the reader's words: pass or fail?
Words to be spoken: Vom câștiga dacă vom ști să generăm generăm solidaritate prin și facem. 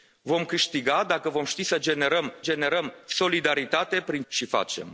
pass